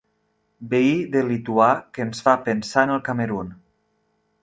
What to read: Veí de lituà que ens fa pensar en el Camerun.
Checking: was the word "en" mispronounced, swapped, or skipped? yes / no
no